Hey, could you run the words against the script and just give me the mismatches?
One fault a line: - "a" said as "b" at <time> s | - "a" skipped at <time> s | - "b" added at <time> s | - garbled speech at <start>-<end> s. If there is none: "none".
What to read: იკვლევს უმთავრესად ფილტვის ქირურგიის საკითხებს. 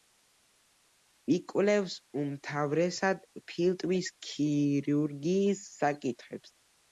none